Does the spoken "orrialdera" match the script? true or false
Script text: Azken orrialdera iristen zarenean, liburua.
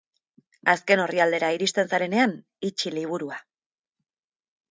true